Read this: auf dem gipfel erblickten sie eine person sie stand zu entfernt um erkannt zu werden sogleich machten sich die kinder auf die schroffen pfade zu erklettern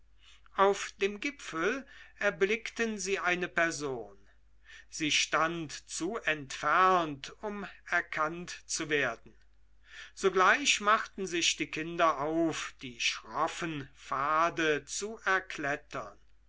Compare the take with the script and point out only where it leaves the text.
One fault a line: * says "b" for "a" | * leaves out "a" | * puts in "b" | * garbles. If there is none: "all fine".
all fine